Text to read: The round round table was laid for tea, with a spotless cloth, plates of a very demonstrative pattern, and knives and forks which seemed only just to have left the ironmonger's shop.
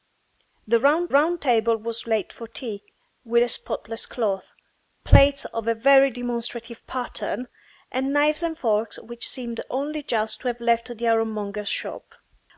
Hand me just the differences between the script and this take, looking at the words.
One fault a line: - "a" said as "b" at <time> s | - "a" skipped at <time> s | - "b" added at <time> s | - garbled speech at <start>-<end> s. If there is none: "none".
none